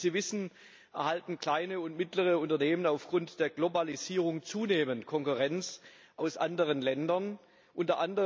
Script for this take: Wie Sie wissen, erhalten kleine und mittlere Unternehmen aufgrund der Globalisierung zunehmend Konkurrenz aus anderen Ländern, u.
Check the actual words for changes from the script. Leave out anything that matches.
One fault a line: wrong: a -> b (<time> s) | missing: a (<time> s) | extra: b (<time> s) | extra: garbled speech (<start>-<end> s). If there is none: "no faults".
no faults